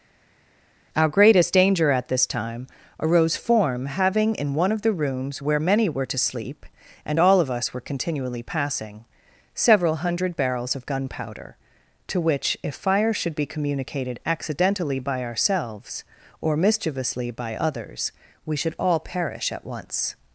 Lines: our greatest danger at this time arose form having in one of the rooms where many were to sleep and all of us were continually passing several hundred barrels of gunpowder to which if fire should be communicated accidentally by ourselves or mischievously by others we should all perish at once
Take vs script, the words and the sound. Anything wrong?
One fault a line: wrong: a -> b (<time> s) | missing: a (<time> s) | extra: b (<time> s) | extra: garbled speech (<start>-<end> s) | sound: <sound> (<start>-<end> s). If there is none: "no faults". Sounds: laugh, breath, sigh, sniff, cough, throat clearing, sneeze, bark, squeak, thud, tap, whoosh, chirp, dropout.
no faults